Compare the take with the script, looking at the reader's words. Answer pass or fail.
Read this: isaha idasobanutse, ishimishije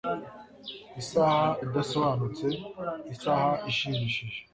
fail